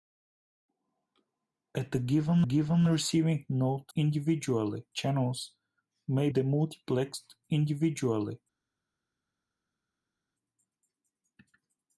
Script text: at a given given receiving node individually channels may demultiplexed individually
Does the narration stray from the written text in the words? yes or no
no